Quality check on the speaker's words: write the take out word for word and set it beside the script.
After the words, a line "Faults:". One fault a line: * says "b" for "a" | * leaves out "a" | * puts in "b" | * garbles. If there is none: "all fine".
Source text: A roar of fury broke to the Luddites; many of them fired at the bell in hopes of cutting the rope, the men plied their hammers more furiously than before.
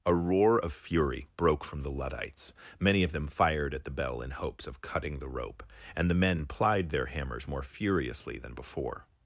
A roar of fury broke from the Luddites; many of them fired at the bell in hopes of cutting the rope, and the men plied their hammers more furiously than before.
Faults:
* says "from" for "to"
* puts in "and"